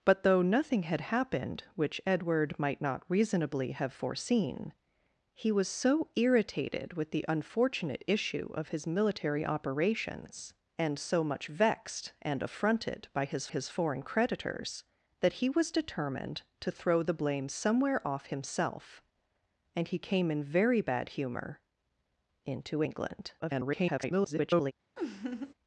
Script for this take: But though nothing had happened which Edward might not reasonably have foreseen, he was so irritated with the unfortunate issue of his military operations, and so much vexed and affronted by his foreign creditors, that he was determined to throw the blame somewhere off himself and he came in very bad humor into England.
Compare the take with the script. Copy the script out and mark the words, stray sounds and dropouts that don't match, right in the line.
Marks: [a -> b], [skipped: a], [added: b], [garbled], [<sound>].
But though nothing had happened which Edward might not reasonably have foreseen, he was so irritated with the unfortunate issue of his military operations, and so much vexed and affronted by his [added: his] foreign creditors, that he was determined to throw the blame somewhere off himself and he came in very bad humor into England. [garbled] [laugh]